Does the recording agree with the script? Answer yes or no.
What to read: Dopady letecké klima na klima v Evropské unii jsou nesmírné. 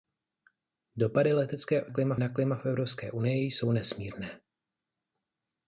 yes